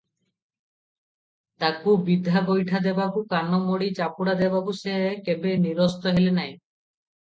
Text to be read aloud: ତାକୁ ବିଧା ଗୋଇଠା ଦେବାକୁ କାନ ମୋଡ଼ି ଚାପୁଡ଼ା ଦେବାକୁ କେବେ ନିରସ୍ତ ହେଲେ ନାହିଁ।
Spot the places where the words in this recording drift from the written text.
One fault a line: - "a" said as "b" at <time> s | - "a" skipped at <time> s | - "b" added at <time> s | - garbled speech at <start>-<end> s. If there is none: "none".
- "ସେ" added at 4.8 s